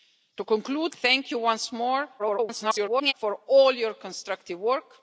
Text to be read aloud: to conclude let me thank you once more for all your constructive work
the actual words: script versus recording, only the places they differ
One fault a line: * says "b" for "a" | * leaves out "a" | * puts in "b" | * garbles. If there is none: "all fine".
* leaves out "let me"
* garbles